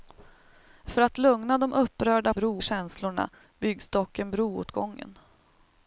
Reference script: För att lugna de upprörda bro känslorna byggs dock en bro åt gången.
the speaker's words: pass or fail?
pass